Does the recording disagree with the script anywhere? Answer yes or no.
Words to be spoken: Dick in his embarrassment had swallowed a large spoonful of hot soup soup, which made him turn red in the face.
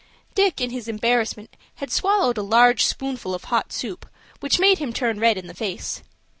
yes